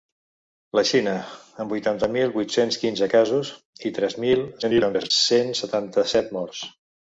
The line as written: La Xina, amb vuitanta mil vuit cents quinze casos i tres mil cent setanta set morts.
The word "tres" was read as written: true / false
true